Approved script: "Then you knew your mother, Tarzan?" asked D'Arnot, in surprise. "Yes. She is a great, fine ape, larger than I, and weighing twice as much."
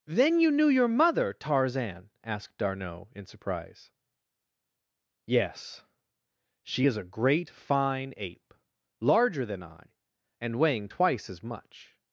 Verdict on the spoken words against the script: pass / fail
pass